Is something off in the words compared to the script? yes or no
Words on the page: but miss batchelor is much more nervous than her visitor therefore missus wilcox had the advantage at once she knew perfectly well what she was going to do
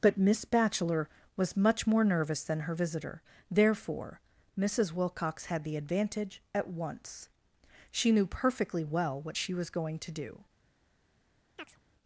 yes